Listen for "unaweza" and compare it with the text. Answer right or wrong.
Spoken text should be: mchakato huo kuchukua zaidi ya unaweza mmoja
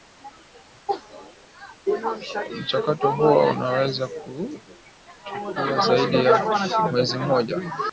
wrong